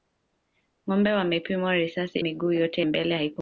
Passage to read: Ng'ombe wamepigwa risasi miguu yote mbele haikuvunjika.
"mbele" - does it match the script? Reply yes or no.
yes